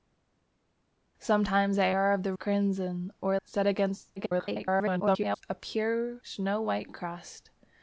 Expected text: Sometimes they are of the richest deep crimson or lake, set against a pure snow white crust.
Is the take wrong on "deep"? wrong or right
wrong